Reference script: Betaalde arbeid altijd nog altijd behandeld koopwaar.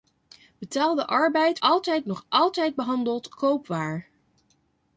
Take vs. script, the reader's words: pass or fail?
pass